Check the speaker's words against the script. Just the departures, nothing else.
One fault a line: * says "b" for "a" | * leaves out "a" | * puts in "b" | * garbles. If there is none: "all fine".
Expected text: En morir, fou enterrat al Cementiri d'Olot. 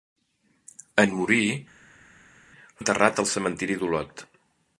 * leaves out "fou"